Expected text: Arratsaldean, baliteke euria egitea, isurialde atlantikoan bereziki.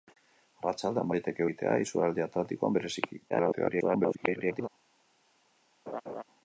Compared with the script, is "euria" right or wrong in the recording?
wrong